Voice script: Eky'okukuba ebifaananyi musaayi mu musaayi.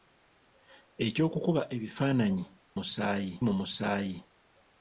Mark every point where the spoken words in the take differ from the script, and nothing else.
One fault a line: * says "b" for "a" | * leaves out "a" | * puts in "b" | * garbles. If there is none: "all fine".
all fine